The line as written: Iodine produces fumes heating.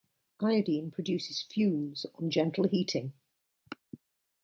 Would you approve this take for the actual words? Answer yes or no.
no